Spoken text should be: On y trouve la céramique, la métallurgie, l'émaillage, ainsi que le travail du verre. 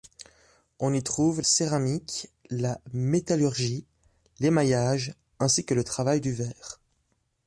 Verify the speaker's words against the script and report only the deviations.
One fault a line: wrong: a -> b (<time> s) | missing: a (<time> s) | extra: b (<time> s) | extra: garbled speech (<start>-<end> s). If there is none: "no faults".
missing: la (1.4 s)